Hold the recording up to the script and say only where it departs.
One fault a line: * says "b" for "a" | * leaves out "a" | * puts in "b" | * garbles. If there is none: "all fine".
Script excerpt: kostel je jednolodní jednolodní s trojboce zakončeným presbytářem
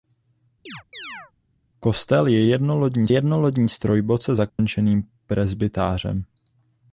all fine